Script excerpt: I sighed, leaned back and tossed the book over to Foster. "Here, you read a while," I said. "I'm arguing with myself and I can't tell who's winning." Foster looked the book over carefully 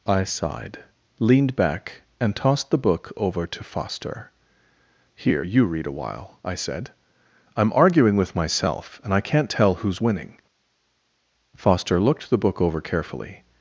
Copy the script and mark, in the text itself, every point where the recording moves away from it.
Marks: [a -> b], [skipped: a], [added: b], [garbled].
I sighed, leaned back and tossed the book over to Foster. "Here, you read a while," I said. "I'm arguing with myself and I can't tell who's winning." Foster looked the book over carefully